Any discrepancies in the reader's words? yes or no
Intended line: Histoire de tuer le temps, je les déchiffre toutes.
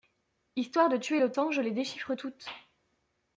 no